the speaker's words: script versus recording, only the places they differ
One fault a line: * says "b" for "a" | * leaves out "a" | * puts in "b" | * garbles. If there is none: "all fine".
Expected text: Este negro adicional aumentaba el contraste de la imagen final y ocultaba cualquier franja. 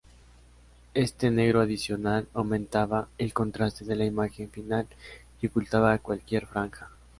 all fine